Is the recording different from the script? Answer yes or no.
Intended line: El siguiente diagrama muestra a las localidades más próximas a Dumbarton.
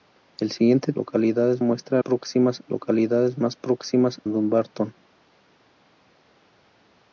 yes